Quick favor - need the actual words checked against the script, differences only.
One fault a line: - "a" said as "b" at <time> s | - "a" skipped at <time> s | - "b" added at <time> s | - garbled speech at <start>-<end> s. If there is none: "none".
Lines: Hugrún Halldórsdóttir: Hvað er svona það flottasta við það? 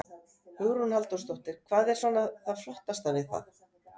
none